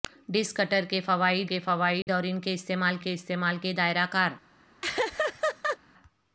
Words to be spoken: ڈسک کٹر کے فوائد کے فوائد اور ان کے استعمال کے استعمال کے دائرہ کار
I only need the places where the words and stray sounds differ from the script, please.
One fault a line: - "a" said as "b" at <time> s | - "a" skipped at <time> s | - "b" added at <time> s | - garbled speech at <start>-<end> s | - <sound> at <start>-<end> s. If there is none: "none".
- dropout at 2.0-2.1 s
- laugh at 4.8-5.8 s